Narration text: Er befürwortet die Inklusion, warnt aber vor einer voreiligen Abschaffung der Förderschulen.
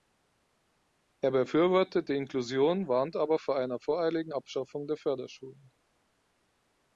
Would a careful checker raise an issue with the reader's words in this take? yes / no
no